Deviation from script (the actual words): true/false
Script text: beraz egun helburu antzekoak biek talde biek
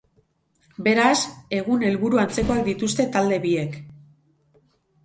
true